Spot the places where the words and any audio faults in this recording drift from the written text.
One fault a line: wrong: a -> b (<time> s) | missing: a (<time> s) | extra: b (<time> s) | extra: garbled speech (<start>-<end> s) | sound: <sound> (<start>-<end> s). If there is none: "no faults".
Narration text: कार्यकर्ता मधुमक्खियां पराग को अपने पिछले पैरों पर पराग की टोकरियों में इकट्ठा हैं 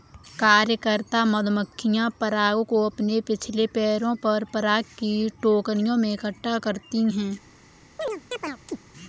extra: करती (6.6 s)
sound: chirp (8.0-8.8 s)